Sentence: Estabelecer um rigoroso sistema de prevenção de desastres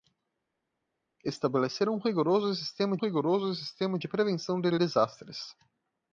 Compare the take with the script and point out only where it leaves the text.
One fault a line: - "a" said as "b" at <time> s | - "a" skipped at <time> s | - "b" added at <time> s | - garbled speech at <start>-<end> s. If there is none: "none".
- "rigoroso sistema" added at 3.0 s
- "de" added at 4.7 s